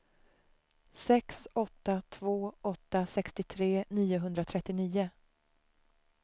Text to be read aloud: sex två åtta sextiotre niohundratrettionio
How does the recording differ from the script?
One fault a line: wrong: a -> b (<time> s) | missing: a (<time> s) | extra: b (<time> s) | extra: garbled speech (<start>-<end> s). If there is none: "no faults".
extra: åtta (1.6 s)